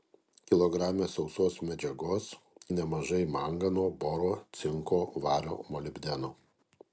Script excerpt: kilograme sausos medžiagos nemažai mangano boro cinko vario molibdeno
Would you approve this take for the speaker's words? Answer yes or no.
yes